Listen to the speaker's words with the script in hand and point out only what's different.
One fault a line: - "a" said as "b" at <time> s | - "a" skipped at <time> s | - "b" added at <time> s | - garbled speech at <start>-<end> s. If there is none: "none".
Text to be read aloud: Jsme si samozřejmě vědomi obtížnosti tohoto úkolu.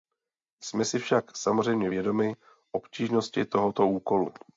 - "však" added at 1.0 s